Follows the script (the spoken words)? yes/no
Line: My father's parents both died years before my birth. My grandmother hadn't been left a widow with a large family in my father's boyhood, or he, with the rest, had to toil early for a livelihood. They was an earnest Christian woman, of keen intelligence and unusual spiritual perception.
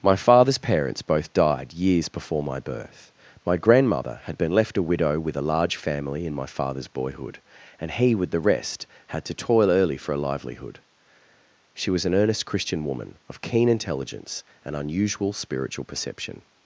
no